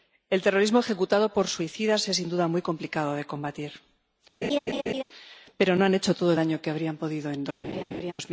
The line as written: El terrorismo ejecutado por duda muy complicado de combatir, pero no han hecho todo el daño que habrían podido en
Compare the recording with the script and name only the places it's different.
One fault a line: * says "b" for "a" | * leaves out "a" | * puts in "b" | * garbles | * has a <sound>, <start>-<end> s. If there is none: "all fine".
* puts in "suicidas es sin"
* has a laugh, 4.4-5.0 s
* has a laugh, 7.6-8.1 s